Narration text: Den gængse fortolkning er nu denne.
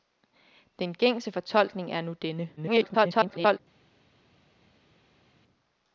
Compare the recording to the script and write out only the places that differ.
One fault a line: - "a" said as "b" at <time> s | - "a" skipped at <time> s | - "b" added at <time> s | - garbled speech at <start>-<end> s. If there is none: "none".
- garbled speech at 2.6-3.6 s